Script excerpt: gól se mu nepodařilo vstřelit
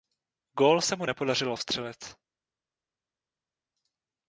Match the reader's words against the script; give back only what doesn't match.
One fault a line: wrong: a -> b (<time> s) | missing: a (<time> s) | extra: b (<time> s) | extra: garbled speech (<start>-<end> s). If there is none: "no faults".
no faults